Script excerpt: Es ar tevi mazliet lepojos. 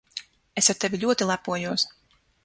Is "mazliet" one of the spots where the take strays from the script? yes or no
yes